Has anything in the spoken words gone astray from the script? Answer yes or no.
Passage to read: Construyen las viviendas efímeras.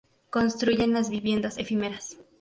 no